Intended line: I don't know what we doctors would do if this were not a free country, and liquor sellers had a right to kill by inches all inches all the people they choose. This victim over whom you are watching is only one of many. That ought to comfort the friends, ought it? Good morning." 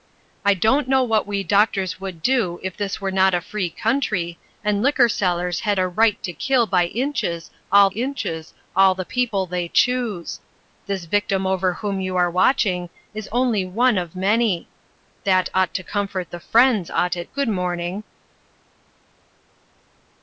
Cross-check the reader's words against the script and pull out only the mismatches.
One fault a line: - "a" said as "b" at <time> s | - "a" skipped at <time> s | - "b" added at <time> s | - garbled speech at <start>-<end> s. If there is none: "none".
none